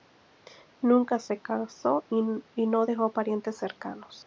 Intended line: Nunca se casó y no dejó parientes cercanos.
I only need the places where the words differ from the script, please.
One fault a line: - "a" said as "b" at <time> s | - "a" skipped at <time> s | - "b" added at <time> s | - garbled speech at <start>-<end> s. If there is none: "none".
none